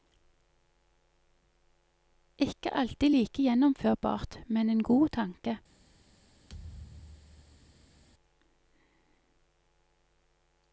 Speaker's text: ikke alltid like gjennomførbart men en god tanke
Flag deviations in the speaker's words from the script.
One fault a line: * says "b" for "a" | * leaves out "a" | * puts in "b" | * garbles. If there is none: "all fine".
all fine